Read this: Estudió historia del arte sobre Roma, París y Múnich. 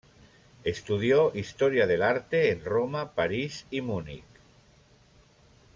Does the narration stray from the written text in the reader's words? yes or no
yes